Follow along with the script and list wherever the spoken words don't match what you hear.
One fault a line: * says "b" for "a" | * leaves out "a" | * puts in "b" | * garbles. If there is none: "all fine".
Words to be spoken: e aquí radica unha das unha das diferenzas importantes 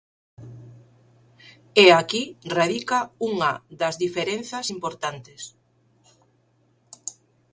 * leaves out "unha das"